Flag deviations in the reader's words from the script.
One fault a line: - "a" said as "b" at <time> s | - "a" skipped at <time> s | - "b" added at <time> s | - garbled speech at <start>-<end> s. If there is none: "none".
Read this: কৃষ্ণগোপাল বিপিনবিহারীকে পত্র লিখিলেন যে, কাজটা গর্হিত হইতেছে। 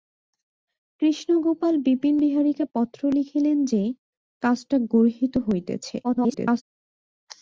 - garbled speech at 6.0-6.6 s